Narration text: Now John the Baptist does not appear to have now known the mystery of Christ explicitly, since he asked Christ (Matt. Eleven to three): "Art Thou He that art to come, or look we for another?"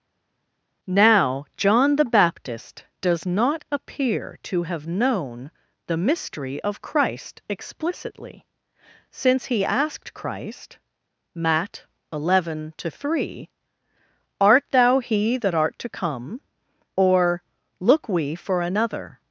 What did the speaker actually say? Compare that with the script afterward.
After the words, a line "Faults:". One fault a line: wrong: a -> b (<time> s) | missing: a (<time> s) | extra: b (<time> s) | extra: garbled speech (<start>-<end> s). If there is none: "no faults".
Now John the Baptist does not appear to have known the mystery of Christ explicitly, since he asked Christ (Matt. Eleven to three): "Art Thou He that art to come, or look we for another?"
Faults:
missing: now (4.9 s)